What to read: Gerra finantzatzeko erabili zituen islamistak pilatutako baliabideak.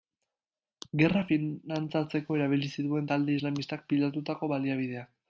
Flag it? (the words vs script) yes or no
yes